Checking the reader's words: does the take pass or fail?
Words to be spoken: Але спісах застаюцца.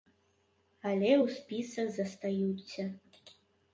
fail